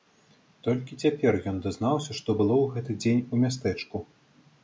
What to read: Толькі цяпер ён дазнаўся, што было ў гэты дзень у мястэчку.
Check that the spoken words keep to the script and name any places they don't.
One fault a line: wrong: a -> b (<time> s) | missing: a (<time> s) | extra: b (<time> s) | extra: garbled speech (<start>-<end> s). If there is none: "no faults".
no faults